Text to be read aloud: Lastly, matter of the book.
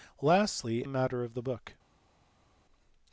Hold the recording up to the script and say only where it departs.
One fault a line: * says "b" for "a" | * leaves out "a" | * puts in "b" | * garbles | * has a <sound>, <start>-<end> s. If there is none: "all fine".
all fine